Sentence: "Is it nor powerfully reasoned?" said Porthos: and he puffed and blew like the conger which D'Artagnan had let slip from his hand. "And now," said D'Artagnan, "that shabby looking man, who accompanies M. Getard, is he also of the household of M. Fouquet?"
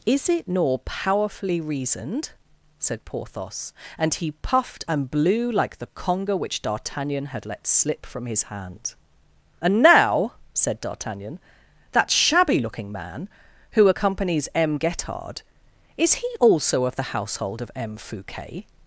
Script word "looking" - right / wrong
right